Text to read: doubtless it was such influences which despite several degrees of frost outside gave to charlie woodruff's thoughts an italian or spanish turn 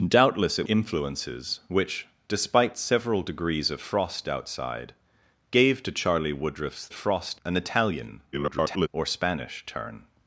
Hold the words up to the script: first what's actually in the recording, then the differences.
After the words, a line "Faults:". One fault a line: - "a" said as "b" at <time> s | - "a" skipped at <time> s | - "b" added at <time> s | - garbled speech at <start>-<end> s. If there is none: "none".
doubtless it influences which despite several degrees of frost outside gave to charlie woodruff's frost an italian [garbled] or spanish turn
Faults:
- "was such" skipped at 0.7 s
- "thoughts" said as "frost" at 6.9 s
- garbled speech at 8.3-8.9 s